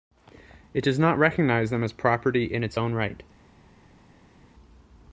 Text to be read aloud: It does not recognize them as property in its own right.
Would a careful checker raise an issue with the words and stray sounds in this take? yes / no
no